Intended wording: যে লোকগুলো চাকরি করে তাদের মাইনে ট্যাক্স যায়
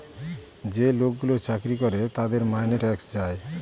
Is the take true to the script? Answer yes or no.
yes